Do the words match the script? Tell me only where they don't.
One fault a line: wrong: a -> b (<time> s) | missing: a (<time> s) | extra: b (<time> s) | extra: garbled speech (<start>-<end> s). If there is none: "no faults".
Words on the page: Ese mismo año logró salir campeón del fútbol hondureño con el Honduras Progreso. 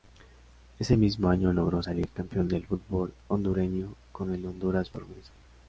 no faults